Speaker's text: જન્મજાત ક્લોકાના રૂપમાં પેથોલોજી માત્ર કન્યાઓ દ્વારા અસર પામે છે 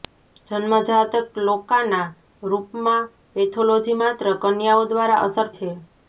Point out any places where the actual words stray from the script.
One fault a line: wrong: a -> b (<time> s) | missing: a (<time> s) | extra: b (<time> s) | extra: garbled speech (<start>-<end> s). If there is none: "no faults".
missing: પામે (5.5 s)